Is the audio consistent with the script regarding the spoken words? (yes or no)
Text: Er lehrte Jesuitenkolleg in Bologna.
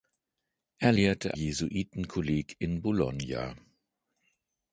yes